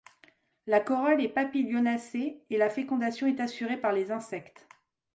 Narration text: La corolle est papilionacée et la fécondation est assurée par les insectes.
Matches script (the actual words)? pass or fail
pass